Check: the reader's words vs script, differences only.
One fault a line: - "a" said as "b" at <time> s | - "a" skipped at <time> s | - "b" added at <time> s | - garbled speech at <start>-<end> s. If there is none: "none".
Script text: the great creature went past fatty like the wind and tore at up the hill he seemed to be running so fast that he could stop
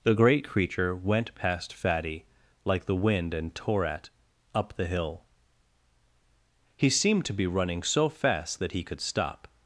none